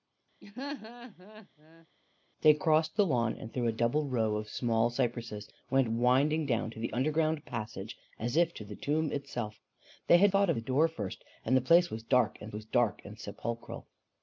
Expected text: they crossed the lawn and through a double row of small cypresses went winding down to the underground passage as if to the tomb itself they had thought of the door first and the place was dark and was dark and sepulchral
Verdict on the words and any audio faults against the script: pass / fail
fail